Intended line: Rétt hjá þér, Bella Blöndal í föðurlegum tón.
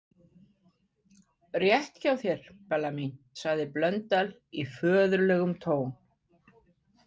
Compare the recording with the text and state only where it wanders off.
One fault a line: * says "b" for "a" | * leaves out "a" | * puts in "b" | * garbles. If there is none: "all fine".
* puts in "mín sagði"